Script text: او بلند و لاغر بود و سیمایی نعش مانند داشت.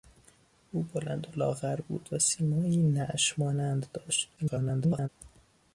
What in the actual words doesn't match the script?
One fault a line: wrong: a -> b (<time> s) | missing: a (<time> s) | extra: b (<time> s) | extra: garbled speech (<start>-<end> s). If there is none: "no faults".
extra: garbled speech (4.4-5.1 s)